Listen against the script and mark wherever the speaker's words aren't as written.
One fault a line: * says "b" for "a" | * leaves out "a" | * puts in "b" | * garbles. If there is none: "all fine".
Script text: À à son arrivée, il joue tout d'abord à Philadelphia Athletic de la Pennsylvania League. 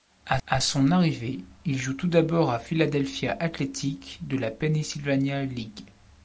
all fine